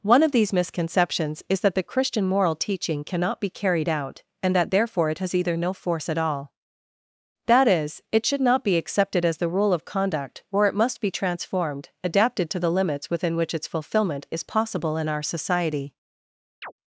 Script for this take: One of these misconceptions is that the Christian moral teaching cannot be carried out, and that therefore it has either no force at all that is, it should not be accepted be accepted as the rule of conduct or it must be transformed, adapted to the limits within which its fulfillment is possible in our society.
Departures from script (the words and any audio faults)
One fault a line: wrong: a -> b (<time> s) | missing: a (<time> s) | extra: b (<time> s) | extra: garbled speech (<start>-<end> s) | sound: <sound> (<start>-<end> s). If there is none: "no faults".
missing: be accepted (9.2 s)
sound: chirp (16.6-16.7 s)